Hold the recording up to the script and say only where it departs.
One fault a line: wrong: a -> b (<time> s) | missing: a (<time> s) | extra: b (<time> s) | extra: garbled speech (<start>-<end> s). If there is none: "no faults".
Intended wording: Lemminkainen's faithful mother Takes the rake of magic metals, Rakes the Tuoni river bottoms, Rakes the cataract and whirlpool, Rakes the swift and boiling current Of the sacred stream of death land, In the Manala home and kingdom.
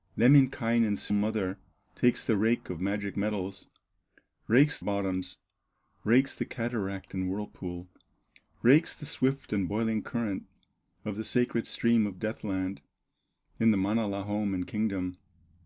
missing: faithful (1.1 s)
missing: the Tuoni river (4.8 s)